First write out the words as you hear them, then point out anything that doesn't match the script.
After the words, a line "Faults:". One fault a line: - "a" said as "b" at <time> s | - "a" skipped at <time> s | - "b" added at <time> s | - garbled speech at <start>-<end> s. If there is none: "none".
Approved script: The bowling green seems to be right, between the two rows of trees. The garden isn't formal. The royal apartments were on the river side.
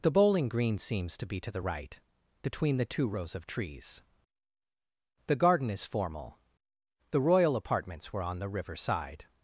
The bowling green seems to be to the right, between the two rows of trees. The garden is formal. The royal apartments were on the river side.
Faults:
- "to the" added at 1.4 s
- "isn't" said as "is" at 5.7 s